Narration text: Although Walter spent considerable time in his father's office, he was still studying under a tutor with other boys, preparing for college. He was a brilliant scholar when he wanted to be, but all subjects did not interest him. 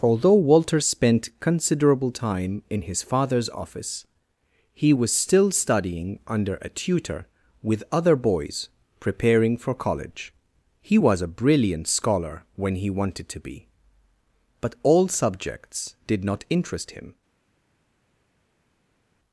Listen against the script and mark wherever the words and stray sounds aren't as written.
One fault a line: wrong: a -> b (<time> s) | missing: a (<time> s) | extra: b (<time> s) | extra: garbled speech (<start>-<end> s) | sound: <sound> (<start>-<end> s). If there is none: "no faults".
no faults